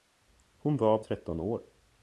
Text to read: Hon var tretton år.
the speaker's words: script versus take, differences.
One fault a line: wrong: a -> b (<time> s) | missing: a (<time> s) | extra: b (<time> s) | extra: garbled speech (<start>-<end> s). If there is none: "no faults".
no faults